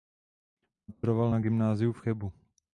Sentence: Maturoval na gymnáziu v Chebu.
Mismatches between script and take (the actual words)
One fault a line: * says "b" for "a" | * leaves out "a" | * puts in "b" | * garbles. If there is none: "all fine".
all fine